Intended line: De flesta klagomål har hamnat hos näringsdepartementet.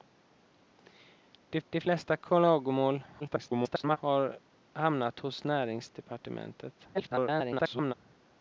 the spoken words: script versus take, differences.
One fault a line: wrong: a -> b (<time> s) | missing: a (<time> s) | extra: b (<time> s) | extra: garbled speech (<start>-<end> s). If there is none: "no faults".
extra: de (1.7 s)
extra: garbled speech (3.2-4.0 s)
extra: garbled speech (6.9-7.9 s)